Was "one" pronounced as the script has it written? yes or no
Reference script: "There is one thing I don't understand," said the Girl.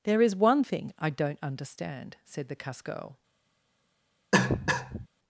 yes